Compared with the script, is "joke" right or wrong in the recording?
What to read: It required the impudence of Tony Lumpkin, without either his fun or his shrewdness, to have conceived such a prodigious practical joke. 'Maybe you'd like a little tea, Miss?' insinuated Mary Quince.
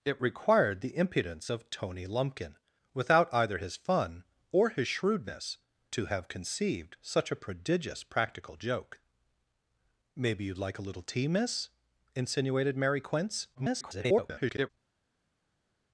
right